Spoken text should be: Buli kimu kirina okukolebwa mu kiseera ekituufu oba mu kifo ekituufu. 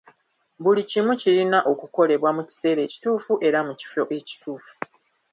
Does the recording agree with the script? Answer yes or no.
no